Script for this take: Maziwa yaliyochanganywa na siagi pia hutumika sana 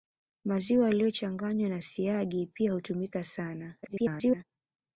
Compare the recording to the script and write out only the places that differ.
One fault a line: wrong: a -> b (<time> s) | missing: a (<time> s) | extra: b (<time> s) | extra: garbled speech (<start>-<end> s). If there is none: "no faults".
extra: garbled speech (3.8-4.4 s)